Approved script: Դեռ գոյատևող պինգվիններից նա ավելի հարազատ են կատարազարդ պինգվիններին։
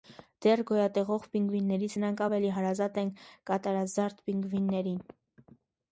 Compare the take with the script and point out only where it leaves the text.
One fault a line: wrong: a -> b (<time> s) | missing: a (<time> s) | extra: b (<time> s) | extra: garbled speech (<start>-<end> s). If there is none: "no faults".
wrong: նա -> նրանք (2.0 s)